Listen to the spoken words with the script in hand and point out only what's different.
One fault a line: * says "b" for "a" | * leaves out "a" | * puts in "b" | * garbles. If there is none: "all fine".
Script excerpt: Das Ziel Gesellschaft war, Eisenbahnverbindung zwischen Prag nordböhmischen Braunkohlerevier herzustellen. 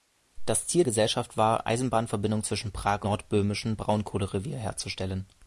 all fine